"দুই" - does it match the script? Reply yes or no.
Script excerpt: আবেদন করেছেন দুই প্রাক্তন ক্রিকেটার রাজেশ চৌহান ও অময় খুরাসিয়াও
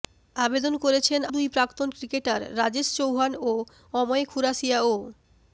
yes